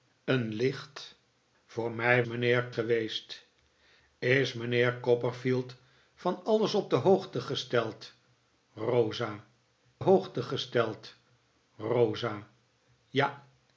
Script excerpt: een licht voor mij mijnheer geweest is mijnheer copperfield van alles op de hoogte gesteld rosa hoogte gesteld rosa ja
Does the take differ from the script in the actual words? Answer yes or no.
no